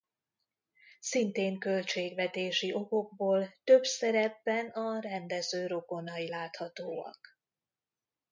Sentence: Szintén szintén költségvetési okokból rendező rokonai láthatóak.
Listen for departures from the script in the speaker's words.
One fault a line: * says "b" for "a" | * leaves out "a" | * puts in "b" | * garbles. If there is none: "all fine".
* leaves out "szintén"
* puts in "több szerepben a"